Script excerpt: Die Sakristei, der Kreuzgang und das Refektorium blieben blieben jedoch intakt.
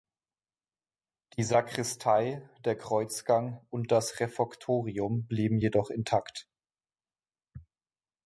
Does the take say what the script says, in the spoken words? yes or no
no